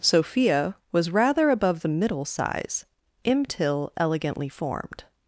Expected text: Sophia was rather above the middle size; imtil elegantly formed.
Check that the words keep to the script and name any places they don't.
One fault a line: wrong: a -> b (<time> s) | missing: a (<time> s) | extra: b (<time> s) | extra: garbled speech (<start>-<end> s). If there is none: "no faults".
no faults